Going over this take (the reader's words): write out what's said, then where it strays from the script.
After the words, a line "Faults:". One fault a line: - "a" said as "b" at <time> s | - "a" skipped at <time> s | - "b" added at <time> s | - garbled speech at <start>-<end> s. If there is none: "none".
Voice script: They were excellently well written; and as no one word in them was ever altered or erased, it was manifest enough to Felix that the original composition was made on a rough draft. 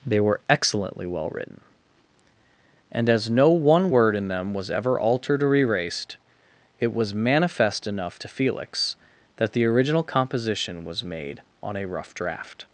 They were excellently well written; and as no one word in them was ever altered or erased, it was manifest enough to Felix that the original composition was made on a rough draft.
Faults:
none